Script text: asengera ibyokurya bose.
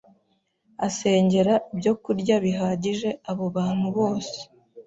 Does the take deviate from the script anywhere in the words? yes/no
yes